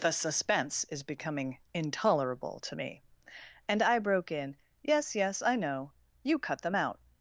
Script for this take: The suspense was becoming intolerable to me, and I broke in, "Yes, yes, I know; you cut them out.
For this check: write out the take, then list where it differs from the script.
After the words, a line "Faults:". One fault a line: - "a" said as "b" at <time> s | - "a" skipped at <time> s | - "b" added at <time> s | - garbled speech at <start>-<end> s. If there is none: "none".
The suspense is becoming intolerable to me, and I broke in, "Yes, yes, I know; you cut them out.
Faults:
- "was" said as "is" at 0.8 s